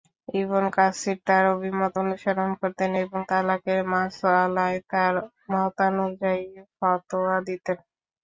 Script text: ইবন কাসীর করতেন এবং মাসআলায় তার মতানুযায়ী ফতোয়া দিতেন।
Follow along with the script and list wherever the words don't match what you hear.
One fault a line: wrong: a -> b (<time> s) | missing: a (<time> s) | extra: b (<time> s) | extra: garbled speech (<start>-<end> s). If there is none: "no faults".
extra: তার অভিমত অনুসরণ (1.3 s)
extra: তালাকের (3.3 s)